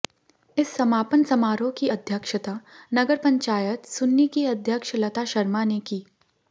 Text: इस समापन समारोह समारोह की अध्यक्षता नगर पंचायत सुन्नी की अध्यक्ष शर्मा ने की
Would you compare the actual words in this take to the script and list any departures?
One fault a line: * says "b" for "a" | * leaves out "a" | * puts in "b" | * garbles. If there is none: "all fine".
* leaves out "समारोह"
* puts in "लता"